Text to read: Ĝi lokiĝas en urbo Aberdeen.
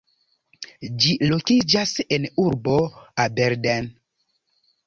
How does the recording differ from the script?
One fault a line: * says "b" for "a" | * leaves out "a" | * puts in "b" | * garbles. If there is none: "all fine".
all fine